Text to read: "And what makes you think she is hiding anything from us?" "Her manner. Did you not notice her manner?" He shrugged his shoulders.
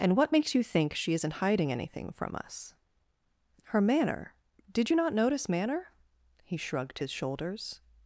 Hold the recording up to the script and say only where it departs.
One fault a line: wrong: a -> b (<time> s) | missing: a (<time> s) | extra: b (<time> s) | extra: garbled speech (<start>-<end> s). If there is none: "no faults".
wrong: is -> isn't (1.1 s)
missing: her (5.5 s)